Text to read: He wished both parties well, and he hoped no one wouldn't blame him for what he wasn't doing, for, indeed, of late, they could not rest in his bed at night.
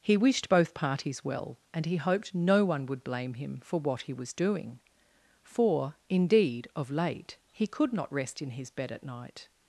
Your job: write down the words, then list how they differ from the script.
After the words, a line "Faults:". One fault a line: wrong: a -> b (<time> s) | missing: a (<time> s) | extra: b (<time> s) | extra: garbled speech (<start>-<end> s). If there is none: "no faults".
He wished both parties well, and he hoped no one would blame him for what he was doing, for, indeed, of late, he could not rest in his bed at night.
Faults:
wrong: wouldn't -> would (2.9 s)
wrong: wasn't -> was (4.1 s)
wrong: they -> he (7.5 s)